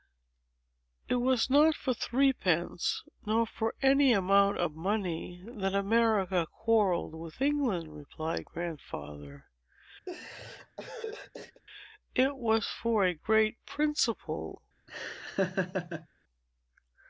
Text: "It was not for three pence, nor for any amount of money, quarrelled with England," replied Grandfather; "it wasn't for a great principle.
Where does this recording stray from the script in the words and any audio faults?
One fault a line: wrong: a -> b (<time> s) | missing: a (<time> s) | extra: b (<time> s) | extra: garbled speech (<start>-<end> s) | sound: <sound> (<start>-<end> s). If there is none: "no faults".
extra: that America (5.5 s)
sound: laugh (10.1-11.6 s)
wrong: wasn't -> was (12.4 s)
sound: laugh (14.9-16.1 s)